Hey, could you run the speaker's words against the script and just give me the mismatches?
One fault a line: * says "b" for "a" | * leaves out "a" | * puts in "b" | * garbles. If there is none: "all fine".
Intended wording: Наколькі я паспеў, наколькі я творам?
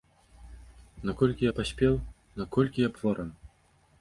all fine